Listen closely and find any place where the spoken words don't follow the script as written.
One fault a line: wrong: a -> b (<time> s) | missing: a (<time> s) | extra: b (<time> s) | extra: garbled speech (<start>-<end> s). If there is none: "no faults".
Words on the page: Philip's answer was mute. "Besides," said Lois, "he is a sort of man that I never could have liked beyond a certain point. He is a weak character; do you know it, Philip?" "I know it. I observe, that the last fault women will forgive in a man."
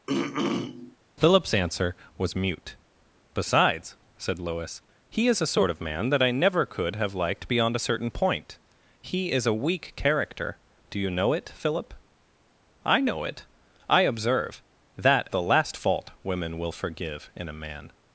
no faults